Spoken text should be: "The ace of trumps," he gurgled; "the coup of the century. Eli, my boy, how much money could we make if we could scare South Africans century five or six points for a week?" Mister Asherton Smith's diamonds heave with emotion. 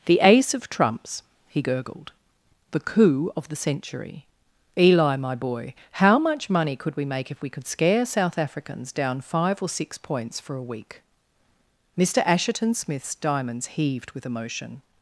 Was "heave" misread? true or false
true